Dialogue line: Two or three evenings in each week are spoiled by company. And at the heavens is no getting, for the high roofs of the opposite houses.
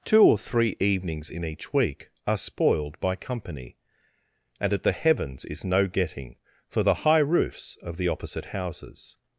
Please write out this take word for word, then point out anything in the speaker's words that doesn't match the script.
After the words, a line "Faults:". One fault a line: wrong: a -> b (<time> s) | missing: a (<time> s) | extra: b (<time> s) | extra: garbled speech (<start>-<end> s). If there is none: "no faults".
Two or three evenings in each week are spoiled by company. And at the heavens is no getting, for the high roofs of the opposite houses.
Faults:
no faults